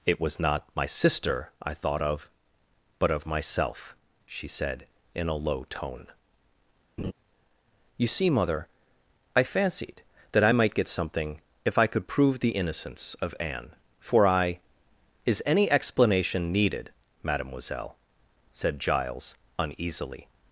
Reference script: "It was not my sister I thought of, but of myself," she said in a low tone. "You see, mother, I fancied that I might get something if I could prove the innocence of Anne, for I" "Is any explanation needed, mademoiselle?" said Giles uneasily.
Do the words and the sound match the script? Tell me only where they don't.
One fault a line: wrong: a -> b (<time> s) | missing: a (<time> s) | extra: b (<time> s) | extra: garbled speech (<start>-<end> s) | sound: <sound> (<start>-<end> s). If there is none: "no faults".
sound: laugh (7.0-7.1 s)